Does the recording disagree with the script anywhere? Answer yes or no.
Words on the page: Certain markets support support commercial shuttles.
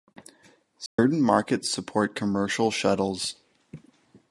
yes